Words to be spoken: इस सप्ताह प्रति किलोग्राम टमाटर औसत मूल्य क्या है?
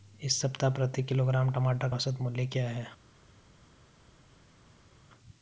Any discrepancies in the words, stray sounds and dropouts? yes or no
no